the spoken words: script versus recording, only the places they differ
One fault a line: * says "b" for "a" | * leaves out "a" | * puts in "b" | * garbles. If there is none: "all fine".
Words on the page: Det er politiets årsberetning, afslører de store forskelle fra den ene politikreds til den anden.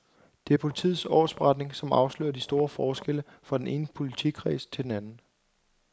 * puts in "som"